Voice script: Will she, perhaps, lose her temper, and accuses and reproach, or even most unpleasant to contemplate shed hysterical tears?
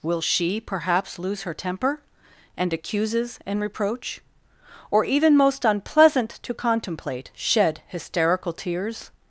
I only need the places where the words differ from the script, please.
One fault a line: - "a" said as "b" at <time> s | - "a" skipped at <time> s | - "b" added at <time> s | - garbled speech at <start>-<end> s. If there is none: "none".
none